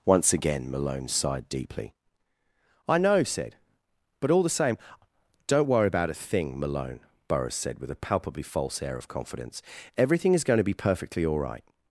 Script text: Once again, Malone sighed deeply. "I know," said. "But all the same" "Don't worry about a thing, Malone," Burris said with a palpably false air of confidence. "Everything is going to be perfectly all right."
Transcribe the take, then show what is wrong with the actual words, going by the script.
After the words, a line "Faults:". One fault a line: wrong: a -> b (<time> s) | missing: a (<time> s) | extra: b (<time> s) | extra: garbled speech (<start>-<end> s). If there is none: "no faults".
Once again, Malone sighed deeply. "I know," said. "But all the same" "Don't worry about a thing, Malone," Burris said with a palpably false air of confidence. "Everything is going to be perfectly all right."
Faults:
no faults